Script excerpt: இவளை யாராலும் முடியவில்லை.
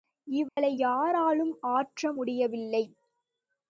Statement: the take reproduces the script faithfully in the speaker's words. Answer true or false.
false